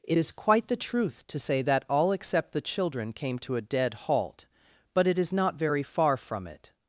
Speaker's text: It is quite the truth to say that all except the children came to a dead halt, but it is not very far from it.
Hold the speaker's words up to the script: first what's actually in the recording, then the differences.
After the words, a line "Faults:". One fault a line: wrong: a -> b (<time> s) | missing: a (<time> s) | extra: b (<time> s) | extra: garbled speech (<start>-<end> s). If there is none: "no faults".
It is quite the truth to say that all except the children came to a dead halt, but it is not very far from it.
Faults:
no faults